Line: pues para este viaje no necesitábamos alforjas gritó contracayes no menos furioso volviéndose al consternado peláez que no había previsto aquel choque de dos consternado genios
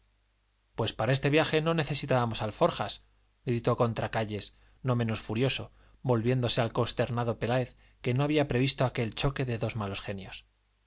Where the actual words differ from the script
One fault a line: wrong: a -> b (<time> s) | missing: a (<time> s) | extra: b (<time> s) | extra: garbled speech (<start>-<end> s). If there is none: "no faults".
wrong: consternado -> malos (9.8 s)